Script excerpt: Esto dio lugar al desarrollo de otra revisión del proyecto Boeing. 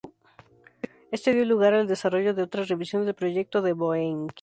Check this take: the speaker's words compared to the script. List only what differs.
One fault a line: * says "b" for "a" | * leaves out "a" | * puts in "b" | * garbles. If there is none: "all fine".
* puts in "de"